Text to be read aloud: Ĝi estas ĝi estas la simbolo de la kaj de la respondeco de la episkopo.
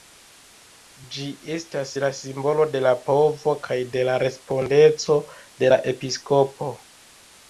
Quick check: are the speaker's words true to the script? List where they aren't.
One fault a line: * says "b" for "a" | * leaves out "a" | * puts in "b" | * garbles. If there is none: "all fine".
* leaves out "ĝi estas"
* puts in "povo"